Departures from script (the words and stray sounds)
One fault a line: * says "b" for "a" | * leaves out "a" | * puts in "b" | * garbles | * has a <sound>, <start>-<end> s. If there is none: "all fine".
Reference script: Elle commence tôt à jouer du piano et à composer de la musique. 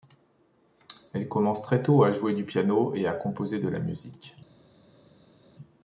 * puts in "très"